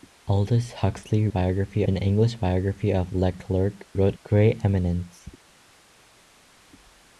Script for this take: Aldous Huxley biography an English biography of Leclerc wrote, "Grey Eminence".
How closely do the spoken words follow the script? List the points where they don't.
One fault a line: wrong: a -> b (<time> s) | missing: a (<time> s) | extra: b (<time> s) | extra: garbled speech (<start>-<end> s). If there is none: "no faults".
no faults